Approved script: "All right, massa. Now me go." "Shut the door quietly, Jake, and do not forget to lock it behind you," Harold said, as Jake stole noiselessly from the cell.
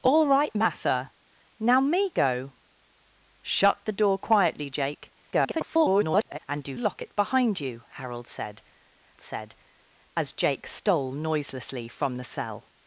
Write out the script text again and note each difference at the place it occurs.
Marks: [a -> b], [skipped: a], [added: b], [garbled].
"All right, massa. Now me go." "Shut the door quietly, Jake, [garbled] and do [skipped: not forget to] lock it behind you," Harold said, [added: said] as Jake stole noiselessly from the cell.